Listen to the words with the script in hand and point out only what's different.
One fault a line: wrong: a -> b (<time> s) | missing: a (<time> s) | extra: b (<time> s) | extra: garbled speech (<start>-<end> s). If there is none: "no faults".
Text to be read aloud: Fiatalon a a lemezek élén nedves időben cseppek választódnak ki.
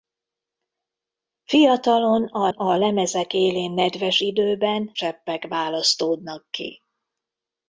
no faults